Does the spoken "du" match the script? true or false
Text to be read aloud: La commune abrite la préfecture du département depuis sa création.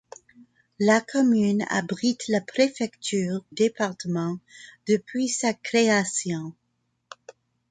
false